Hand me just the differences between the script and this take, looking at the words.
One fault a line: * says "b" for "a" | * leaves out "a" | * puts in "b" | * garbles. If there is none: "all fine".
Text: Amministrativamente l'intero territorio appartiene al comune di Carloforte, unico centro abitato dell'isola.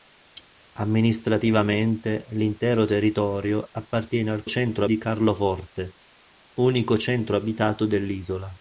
* says "centro" for "comune"